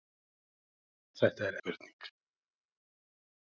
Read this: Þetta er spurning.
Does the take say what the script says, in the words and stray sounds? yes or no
yes